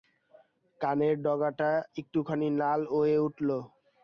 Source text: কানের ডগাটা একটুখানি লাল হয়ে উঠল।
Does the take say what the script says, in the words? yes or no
yes